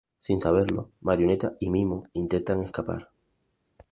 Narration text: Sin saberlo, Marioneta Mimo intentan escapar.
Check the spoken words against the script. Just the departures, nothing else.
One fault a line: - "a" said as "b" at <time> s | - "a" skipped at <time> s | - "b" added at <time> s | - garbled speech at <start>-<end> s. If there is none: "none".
- "y" added at 1.6 s